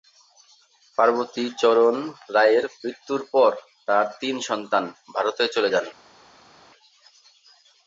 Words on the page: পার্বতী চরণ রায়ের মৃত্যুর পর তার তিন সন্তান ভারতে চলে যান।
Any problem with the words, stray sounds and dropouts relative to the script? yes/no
no